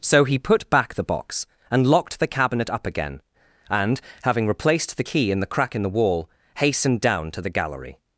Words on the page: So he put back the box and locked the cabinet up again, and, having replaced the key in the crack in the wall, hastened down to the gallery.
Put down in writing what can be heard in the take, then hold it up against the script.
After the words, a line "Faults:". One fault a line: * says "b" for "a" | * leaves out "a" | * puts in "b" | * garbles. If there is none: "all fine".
So he put back the box and locked the cabinet up again, and, having replaced the key in the crack in the wall, hastened down to the gallery.
Faults:
all fine